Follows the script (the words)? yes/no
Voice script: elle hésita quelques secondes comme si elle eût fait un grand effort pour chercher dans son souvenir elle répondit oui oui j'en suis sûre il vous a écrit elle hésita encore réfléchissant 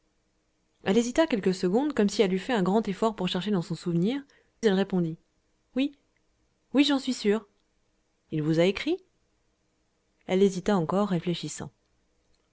yes